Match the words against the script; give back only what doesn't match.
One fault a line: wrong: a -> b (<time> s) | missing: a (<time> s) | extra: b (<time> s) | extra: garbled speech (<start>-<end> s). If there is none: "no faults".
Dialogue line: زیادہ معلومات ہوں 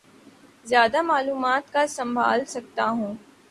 extra: کا سنبھال سکتا (1.7 s)